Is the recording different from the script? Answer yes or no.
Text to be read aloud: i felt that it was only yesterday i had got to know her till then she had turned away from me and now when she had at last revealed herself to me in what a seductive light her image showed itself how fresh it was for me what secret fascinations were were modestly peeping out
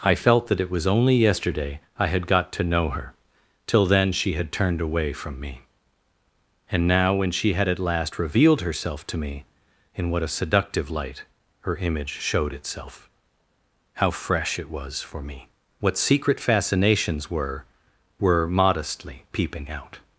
no